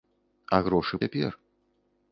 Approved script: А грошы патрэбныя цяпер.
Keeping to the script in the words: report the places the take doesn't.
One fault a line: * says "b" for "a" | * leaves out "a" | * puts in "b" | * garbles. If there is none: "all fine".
* leaves out "патрэбныя"